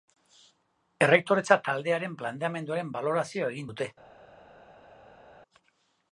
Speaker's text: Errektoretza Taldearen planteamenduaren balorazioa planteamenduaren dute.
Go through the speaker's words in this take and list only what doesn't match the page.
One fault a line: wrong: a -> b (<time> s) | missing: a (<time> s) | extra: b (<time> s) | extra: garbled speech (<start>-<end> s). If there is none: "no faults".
wrong: planteamenduaren -> egin (3.5 s)